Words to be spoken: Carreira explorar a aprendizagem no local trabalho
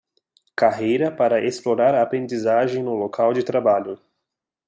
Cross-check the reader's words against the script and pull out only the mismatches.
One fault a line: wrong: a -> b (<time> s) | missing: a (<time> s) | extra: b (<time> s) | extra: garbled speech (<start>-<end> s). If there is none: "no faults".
extra: para (1.1 s)
extra: de (3.3 s)